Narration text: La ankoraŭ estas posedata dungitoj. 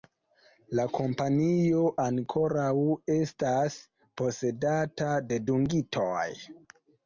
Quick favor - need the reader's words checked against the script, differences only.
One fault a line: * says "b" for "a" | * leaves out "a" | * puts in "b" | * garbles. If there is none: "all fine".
* puts in "kompanio"
* puts in "de"